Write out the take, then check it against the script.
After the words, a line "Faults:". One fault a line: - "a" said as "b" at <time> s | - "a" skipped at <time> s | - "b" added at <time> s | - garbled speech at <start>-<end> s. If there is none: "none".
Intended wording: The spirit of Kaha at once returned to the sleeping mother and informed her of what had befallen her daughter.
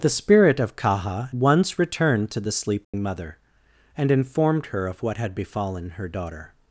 The spirit of Kaha once returned to the sleeping mother and informed her of what had befallen her daughter.
Faults:
- "at" skipped at 1.3 s